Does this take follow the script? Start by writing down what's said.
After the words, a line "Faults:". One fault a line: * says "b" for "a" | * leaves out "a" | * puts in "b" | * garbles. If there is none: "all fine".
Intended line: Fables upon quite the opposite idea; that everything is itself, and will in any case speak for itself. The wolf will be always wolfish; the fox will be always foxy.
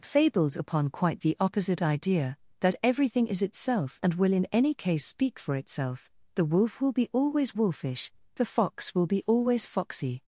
Fables upon quite the opposite idea; that everything is itself, and will in any case speak for itself. The wolf will be always wolfish; the fox will be always foxy.
Faults:
all fine